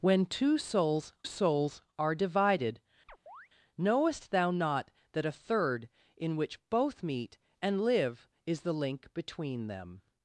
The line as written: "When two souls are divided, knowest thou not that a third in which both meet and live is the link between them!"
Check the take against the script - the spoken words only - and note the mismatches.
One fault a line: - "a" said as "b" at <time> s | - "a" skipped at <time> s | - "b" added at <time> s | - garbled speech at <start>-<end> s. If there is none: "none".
- "souls" added at 1.2 s